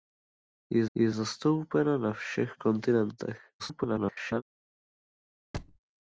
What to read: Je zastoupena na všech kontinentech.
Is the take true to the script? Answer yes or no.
no